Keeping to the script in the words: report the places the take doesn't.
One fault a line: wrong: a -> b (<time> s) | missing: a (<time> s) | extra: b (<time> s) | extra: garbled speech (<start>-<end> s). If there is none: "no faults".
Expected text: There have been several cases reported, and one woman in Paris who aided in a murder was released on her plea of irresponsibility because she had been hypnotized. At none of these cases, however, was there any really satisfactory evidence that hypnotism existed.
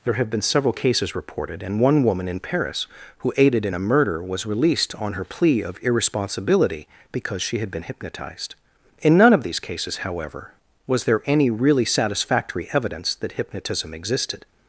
wrong: At -> In (9.0 s)